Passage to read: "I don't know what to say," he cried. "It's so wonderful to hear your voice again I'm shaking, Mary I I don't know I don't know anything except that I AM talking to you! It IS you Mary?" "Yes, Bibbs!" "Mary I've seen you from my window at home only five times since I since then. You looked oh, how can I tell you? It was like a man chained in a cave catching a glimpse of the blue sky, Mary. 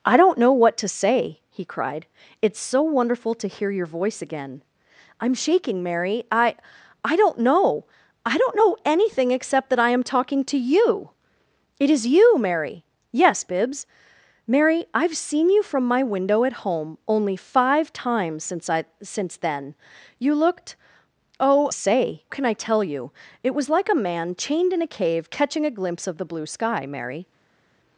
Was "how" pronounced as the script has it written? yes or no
no